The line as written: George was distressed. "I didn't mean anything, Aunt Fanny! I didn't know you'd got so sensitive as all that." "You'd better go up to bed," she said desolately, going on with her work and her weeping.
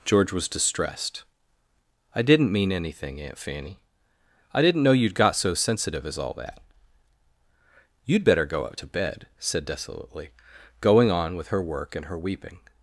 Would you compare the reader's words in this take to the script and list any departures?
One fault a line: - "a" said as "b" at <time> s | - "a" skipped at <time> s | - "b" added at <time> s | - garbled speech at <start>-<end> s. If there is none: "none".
- "she" skipped at 9.3 s